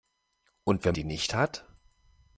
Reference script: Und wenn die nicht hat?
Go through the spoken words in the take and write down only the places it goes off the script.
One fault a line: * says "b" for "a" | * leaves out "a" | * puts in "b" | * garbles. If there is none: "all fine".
all fine